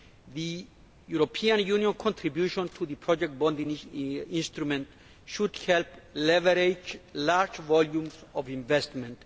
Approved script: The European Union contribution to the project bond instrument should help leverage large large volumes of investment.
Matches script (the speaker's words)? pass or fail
fail